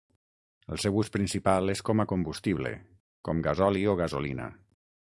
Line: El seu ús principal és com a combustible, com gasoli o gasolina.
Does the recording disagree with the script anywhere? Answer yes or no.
no